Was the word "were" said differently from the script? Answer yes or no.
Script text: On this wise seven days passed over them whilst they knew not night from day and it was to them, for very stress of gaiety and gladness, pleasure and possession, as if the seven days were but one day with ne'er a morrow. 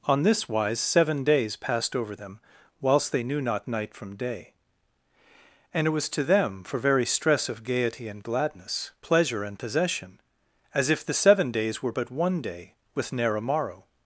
no